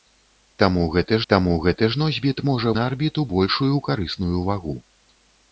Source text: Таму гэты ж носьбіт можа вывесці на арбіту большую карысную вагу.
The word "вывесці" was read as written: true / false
false